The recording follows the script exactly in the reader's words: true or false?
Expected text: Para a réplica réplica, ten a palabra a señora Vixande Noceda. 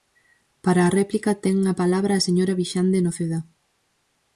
false